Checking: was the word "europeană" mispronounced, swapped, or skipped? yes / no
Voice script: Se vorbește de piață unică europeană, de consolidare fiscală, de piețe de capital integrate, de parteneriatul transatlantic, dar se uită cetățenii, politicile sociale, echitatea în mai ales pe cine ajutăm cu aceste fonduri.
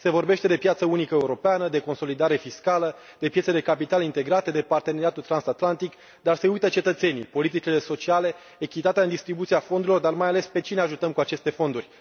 no